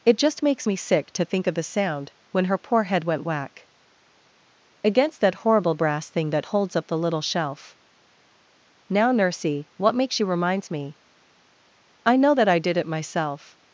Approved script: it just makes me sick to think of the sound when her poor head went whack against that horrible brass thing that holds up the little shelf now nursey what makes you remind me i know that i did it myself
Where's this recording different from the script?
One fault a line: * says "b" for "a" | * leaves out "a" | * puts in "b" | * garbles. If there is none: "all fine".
* says "reminds" for "remind"